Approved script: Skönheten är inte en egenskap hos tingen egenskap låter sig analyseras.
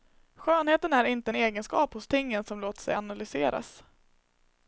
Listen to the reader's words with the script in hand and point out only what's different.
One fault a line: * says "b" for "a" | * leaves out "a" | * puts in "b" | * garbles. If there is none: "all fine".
* says "som" for "egenskap"